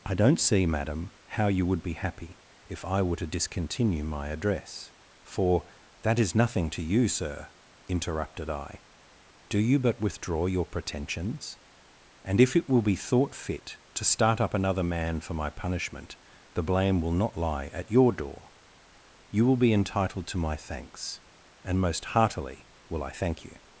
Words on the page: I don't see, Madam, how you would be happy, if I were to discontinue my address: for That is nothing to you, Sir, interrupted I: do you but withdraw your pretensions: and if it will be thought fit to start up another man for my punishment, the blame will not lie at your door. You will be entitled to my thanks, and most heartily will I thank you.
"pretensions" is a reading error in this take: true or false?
false